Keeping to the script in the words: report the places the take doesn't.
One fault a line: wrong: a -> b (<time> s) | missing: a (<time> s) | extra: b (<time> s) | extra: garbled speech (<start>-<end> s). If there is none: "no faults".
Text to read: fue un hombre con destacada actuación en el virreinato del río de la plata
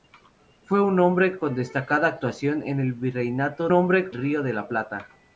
wrong: del -> hombre (3.7 s)